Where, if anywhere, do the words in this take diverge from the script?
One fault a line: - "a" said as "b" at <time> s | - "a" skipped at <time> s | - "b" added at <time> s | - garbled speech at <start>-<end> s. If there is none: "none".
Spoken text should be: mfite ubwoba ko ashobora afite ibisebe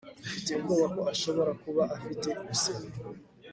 - "kuba" added at 1.6 s